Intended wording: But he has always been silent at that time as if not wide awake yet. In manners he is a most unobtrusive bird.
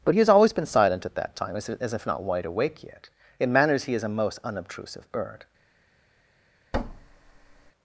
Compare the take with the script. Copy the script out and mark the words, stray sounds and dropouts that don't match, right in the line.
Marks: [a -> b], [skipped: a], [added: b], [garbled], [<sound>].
But he has always been silent at that time as if not wide awake yet. In manners he is a most unobtrusive bird. [thud]